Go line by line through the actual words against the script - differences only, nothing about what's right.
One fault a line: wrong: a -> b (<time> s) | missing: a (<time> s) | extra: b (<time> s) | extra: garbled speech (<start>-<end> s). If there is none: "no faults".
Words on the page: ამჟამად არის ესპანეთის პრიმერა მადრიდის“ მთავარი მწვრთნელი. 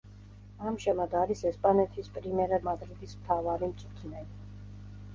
no faults